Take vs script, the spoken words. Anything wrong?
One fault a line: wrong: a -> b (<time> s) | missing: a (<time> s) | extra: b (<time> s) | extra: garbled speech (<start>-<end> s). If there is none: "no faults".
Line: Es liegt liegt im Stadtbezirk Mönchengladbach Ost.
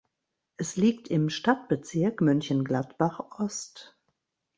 missing: liegt (1.1 s)